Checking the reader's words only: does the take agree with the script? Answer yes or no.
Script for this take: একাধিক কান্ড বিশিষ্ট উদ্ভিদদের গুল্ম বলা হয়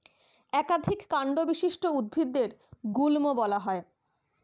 yes